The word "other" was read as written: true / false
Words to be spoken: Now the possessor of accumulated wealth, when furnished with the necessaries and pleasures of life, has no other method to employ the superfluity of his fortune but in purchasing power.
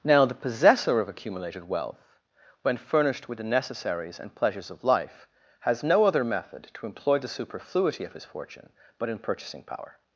true